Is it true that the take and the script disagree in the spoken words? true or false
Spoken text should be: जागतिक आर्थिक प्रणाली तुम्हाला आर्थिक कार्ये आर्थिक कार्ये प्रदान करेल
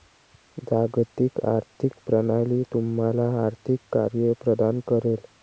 true